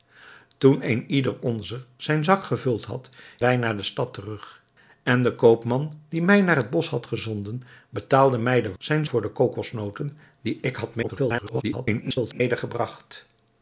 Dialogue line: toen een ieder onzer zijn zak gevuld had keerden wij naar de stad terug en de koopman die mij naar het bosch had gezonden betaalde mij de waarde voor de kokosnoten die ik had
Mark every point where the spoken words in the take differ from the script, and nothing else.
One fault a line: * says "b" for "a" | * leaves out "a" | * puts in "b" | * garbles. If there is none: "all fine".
* leaves out "keerden"
* says "zijn" for "waarde"
* garbles